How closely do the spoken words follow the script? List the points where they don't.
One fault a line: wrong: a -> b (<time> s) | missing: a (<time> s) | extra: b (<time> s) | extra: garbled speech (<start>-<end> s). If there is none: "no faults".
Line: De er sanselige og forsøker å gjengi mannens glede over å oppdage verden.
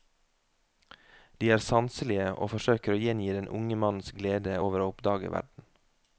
extra: den unge (3.4 s)